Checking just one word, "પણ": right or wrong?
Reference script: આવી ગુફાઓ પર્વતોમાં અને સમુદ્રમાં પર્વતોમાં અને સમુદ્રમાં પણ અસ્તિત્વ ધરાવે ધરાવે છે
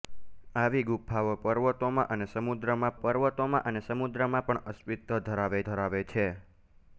right